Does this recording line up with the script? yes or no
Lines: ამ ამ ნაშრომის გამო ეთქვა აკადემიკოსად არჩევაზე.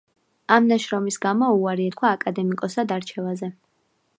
no